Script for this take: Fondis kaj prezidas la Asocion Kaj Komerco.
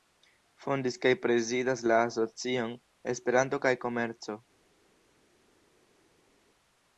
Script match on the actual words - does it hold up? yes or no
no